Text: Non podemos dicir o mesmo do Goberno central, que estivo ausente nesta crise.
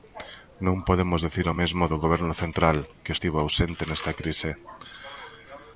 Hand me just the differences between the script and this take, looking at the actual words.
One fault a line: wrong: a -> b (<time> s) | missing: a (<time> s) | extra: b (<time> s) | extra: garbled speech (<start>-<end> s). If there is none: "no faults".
no faults